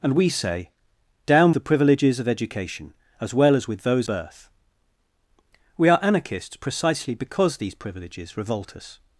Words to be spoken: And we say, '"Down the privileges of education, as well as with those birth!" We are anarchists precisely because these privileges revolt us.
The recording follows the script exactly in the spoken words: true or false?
true